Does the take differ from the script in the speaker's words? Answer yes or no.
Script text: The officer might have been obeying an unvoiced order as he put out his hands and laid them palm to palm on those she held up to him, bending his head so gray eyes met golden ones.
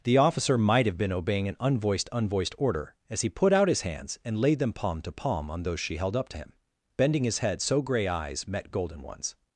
yes